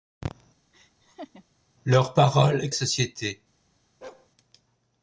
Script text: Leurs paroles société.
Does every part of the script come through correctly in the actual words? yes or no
yes